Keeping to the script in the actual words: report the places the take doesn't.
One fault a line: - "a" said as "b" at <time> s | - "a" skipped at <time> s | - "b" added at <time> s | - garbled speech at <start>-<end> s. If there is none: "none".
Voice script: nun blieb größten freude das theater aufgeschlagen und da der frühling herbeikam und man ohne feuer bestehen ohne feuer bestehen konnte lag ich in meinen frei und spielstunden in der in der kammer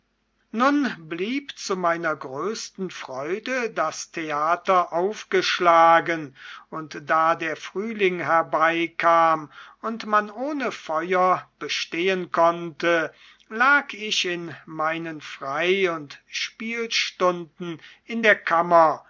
- "zu meiner" added at 1.6 s
- "ohne feuer bestehen" skipped at 12.3 s
- "in der" skipped at 18.3 s